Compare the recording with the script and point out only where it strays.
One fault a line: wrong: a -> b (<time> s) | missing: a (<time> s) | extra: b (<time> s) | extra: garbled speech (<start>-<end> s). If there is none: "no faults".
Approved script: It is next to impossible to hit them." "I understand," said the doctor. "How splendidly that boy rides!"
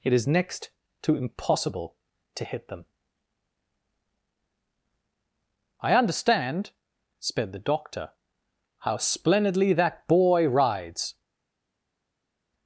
wrong: said -> sped (7.2 s)